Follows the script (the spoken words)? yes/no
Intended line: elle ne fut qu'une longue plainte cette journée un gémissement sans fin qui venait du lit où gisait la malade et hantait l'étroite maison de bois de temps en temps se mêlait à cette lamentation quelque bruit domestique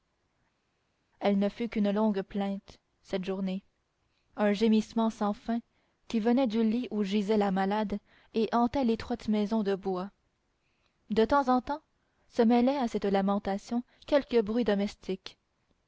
yes